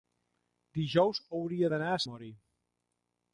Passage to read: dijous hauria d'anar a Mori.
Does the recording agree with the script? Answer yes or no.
yes